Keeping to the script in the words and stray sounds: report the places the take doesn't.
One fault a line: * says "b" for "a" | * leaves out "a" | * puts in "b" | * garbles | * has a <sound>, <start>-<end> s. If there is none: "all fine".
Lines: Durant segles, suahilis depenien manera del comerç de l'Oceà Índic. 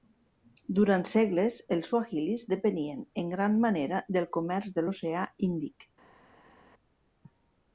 * puts in "els"
* puts in "en gran"